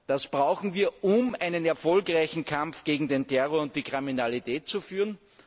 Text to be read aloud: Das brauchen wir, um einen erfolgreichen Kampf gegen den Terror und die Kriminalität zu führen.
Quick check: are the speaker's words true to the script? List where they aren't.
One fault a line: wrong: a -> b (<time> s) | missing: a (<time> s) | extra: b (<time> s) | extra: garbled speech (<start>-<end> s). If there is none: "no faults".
no faults